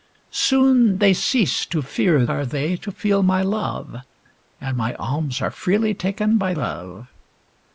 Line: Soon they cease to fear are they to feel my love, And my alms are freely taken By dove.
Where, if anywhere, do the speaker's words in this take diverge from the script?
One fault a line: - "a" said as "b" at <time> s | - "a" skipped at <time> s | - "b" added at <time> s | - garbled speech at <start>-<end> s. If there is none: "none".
none